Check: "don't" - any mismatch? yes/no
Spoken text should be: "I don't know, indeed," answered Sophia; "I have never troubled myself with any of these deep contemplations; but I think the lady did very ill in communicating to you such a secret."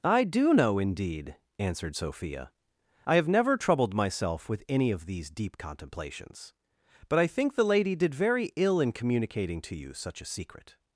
yes